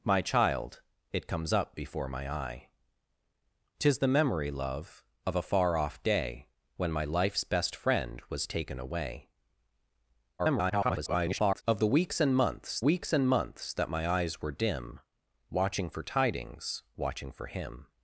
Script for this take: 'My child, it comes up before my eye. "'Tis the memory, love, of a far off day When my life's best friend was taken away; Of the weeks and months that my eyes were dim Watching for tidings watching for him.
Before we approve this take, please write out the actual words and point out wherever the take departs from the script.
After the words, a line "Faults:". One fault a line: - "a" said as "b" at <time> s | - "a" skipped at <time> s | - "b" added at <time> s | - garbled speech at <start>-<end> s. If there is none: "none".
'My child, it comes up before my eye. "'Tis the memory, love, of a far off day When my life's best friend was taken away; [garbled] Of the weeks and months weeks and months that my eyes were dim Watching for tidings watching for him.
Faults:
- garbled speech at 10.4-11.6 s
- "weeks and months" added at 12.8 s